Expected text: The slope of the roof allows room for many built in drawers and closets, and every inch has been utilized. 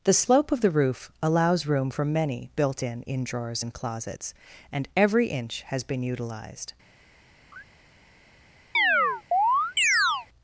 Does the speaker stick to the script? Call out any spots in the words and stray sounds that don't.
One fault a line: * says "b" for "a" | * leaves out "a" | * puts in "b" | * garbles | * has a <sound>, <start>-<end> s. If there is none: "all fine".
* puts in "in"
* has a laugh, 7.5-7.6 s
* has a chirp, 8.7-10.3 s